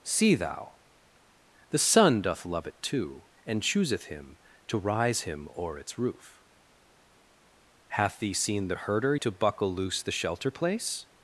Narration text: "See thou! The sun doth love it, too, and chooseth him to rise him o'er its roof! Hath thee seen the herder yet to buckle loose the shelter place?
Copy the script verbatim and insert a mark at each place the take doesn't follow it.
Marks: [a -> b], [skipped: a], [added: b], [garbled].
"See thou! The sun doth love it, too, and chooseth him to rise him o'er its roof! Hath thee seen the herder [skipped: yet] to buckle loose the shelter place?